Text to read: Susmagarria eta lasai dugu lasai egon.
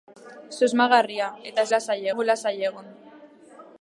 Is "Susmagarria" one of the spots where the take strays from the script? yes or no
no